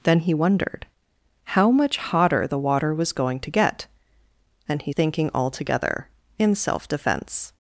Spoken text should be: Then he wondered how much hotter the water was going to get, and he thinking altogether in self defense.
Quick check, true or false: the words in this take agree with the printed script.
true